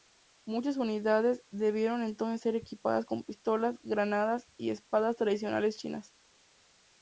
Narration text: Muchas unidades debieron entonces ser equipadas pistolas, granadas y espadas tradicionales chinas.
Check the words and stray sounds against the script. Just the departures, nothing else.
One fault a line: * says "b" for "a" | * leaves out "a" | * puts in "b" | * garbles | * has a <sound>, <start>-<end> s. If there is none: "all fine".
* puts in "con"